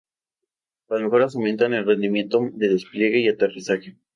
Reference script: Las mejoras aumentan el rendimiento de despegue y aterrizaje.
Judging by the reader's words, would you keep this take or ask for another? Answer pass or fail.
pass